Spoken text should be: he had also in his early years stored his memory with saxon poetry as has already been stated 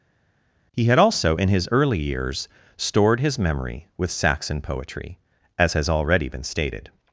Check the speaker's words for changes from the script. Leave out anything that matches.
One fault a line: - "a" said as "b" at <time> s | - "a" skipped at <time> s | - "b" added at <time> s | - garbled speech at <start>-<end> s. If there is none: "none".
none